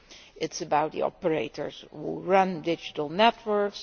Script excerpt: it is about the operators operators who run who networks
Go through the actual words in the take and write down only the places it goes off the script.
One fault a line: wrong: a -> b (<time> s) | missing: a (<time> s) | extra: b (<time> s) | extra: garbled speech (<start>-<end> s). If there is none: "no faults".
missing: operators (1.8 s)
wrong: who -> digital (2.6 s)